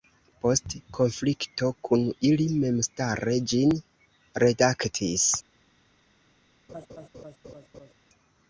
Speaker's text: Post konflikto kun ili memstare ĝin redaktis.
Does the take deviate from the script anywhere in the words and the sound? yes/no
yes